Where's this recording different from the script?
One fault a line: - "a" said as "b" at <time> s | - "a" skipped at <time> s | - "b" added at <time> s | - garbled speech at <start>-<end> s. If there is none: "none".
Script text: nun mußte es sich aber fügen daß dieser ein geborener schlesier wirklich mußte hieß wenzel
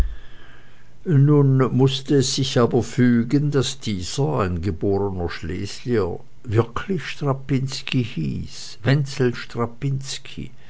- "mußte" said as "strapinski" at 7.0 s